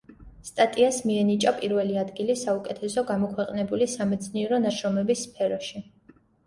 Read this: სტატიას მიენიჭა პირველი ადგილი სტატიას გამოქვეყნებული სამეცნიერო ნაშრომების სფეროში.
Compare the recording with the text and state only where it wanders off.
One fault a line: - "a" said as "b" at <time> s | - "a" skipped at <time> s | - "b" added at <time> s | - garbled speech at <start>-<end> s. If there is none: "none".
- "სტატიას" said as "საუკეთესო" at 2.4 s